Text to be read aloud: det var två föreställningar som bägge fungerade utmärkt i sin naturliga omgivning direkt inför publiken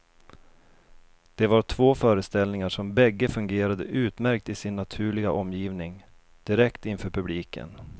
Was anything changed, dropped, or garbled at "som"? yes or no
no